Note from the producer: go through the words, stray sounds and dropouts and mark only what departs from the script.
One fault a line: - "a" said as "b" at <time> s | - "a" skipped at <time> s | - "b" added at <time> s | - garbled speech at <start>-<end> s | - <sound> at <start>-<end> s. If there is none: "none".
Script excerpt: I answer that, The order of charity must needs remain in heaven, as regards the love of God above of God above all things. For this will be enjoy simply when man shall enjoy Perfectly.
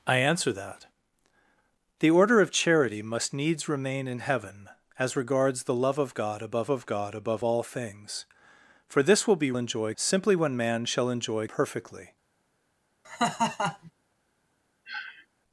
- laugh at 13.0-13.9 s
- sniff at 14.9-15.3 s